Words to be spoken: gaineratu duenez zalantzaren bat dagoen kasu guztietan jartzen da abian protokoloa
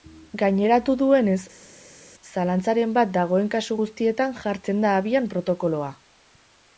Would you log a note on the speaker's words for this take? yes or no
no